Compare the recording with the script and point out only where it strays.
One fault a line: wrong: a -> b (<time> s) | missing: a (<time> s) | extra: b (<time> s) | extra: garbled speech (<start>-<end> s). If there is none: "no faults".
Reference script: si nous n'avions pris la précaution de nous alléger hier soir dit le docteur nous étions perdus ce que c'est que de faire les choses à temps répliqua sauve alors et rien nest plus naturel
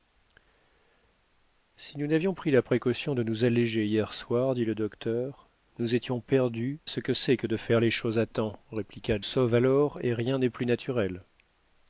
no faults